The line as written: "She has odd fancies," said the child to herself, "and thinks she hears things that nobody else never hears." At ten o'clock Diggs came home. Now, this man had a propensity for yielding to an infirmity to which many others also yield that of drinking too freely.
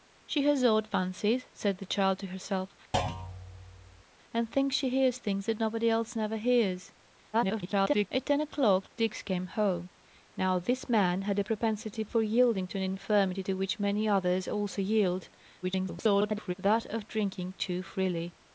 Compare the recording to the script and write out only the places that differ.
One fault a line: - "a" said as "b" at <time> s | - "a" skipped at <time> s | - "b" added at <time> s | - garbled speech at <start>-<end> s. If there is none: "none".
- garbled speech at 7.3-8.1 s
- garbled speech at 15.6-16.5 s